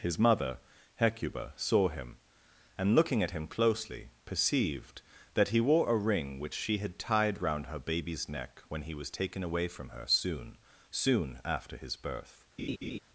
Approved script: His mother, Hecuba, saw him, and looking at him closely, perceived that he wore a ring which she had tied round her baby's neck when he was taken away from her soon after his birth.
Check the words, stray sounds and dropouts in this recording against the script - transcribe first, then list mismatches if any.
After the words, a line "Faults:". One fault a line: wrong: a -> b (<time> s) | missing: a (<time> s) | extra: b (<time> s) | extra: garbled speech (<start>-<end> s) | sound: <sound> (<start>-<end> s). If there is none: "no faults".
His mother, Hecuba, saw him, and looking at him closely, perceived that he wore a ring which she had tied round her baby's neck when he was taken away from her soon soon after his birth.
Faults:
extra: soon (10.9 s)
sound: laugh (12.6-13.0 s)